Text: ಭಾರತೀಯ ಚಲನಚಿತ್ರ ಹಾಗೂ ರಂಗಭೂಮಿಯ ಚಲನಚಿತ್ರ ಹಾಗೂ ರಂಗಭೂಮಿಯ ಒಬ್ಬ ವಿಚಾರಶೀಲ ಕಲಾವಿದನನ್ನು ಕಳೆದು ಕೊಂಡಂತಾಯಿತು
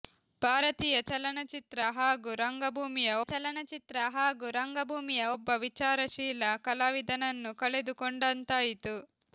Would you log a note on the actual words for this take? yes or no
no